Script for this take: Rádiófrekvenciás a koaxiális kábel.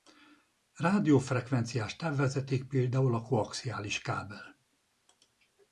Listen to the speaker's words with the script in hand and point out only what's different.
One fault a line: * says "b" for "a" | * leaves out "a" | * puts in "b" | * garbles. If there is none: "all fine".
* puts in "távvezeték például"